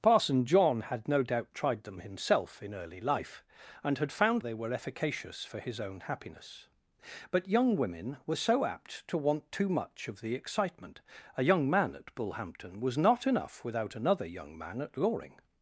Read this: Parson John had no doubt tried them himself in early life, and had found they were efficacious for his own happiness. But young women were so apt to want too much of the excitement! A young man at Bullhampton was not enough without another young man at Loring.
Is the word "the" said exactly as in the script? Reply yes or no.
yes